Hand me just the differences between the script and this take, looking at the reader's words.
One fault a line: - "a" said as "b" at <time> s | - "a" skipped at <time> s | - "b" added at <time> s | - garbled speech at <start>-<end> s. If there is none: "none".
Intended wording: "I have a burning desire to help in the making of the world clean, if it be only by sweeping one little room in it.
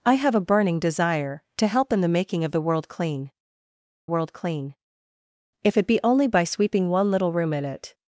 - "world clean" added at 4.1 s